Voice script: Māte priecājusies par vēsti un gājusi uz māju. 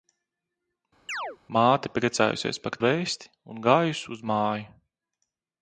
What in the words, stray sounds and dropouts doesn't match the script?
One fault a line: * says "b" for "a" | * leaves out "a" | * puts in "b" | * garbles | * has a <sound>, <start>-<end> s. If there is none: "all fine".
* has a chirp, 1.1-1.4 s